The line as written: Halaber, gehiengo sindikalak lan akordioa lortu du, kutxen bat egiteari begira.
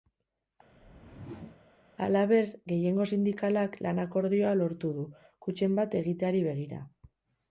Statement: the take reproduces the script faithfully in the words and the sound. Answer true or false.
false